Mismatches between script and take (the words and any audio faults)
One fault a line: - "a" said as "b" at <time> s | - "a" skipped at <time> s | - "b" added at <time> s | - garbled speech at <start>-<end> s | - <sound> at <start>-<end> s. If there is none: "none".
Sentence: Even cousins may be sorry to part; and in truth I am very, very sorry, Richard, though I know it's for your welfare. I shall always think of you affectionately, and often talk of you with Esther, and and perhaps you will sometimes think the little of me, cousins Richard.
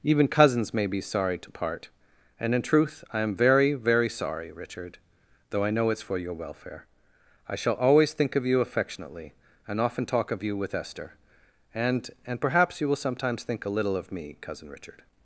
- "the" said as "a" at 13.6 s
- "cousins" said as "cousin" at 14.4 s